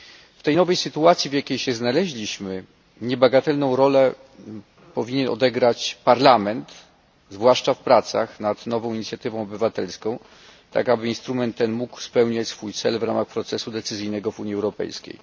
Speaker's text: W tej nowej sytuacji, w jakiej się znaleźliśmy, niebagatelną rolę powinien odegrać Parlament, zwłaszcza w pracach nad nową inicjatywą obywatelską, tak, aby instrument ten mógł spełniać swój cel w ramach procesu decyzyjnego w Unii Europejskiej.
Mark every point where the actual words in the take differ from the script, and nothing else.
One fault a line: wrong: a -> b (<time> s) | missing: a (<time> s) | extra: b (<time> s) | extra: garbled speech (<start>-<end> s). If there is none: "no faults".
no faults